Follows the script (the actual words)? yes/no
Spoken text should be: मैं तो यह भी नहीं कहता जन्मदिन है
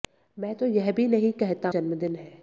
yes